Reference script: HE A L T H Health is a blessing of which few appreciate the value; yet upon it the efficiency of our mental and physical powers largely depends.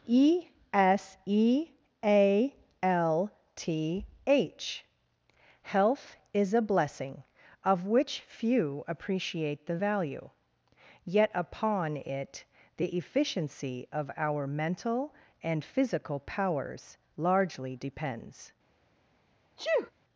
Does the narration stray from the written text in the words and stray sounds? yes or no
yes